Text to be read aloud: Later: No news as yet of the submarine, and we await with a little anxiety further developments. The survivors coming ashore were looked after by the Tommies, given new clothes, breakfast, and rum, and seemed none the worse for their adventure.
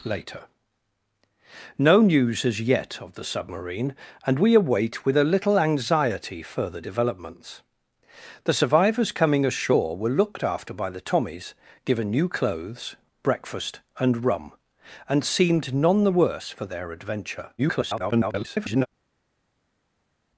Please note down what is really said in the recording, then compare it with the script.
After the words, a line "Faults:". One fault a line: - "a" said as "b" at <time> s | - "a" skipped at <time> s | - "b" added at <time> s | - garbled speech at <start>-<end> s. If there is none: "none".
Later: No news as yet of the submarine, and we await with a little anxiety further developments. The survivors coming ashore were looked after by the Tommies, given new clothes, breakfast, and rum, and seemed none the worse for their adventure. [garbled]
Faults:
- garbled speech at 17.6-18.9 s